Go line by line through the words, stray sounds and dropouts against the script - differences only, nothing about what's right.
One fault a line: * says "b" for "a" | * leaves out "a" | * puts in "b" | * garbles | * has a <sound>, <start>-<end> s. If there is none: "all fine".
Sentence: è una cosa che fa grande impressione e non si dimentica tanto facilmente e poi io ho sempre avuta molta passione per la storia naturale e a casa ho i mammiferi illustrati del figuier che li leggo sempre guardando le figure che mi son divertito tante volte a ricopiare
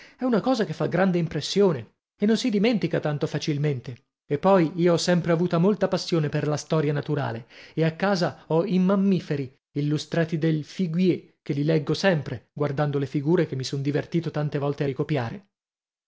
all fine